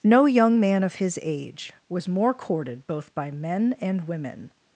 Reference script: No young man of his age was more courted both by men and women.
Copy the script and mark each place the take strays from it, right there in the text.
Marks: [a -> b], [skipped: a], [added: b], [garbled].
No young man of his age was more courted both by men and women.